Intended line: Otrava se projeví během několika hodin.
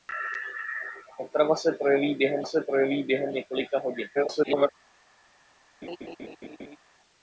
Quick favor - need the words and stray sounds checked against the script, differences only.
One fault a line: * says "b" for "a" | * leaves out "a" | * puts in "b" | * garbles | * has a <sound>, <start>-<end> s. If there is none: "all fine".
* puts in "se projeví během"
* garbles
* has a laugh, 5.8-6.8 s